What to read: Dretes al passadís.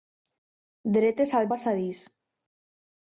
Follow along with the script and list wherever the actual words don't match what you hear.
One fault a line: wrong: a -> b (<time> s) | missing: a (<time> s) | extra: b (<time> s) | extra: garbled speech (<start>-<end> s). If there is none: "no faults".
no faults